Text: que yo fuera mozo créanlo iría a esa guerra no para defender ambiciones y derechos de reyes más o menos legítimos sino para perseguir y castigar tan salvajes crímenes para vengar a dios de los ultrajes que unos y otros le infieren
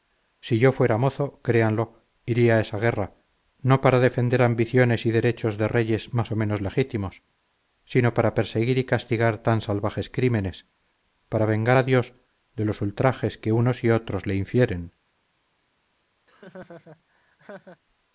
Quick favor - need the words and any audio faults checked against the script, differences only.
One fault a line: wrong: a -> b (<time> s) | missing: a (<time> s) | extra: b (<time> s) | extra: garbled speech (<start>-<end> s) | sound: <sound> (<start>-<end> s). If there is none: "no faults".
wrong: que -> si (0.4 s)
sound: laugh (16.3-17.8 s)